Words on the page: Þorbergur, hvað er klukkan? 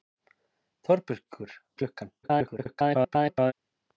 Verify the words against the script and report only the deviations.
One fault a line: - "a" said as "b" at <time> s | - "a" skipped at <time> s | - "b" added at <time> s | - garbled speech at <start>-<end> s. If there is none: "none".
- "hvað" skipped at 1.6 s
- garbled speech at 2.2-3.5 s